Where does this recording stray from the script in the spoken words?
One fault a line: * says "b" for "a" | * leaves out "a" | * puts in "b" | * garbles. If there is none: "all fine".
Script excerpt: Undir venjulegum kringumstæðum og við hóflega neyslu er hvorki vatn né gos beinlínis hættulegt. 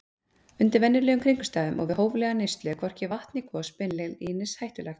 all fine